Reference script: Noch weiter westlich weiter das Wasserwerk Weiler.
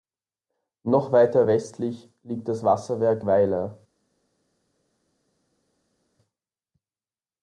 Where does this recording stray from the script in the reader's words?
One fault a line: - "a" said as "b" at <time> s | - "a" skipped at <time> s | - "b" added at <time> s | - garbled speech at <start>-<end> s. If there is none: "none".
- "weiter" said as "liegt" at 2.2 s